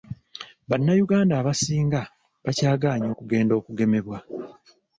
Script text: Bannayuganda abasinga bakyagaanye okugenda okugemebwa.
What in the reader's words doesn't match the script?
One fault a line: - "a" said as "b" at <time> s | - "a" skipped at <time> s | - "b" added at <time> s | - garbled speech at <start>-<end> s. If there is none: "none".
none